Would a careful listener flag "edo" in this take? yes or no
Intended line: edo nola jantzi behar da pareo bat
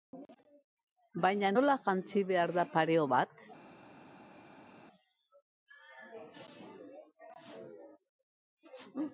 yes